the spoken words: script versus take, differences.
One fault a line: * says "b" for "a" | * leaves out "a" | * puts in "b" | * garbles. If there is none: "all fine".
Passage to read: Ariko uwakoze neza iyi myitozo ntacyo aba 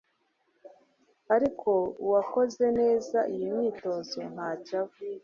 all fine